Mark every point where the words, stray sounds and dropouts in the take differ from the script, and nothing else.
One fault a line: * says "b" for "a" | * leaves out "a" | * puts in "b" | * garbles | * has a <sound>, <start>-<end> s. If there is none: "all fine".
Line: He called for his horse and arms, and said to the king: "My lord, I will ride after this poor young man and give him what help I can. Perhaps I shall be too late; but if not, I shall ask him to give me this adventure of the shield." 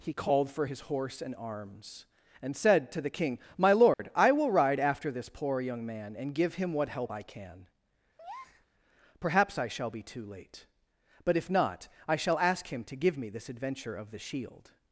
* has a dropout, 3.9-4.0 s
* has a breath, 8.2-8.7 s